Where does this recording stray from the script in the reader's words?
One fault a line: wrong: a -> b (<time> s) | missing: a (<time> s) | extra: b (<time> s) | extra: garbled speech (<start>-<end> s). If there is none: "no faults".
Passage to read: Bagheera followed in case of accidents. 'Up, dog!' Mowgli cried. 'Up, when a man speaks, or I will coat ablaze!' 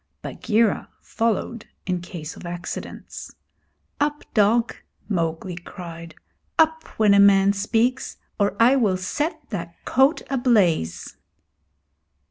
extra: set that (9.0 s)